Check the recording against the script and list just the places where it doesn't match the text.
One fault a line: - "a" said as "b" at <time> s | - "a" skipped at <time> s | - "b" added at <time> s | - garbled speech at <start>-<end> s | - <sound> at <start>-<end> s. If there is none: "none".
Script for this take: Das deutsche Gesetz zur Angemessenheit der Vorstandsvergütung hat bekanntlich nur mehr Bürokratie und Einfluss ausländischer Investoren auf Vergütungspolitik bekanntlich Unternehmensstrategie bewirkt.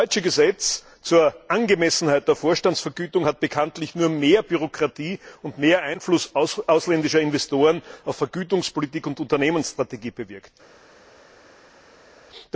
- "mehr" added at 5.6 s
- "bekanntlich" said as "und" at 9.1 s